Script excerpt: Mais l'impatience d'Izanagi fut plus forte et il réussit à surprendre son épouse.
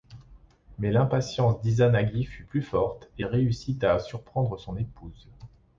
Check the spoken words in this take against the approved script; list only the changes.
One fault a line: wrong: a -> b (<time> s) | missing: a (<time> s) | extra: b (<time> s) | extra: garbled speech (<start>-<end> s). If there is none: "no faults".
missing: il (3.2 s)